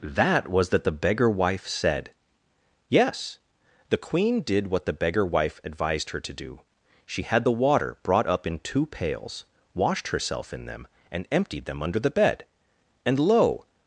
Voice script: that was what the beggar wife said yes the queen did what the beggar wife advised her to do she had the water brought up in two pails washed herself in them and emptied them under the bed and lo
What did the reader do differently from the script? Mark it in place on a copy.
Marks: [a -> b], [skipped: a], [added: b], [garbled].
that was [what -> that] the beggar wife said yes the queen did what the beggar wife advised her to do she had the water brought up in two pails washed herself in them and emptied them under the bed and lo